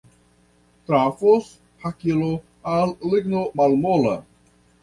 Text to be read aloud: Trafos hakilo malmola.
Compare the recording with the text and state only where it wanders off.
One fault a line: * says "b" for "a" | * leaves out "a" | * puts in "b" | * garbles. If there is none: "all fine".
* puts in "al ligno"